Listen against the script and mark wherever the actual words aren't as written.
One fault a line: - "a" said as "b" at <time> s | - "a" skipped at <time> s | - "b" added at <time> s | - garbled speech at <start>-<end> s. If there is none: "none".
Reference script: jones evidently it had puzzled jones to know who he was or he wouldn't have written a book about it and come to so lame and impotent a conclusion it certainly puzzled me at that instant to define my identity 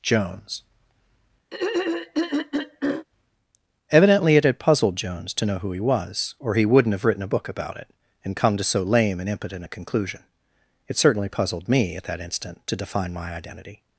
none